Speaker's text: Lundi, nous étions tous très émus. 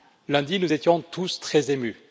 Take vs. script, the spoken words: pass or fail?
pass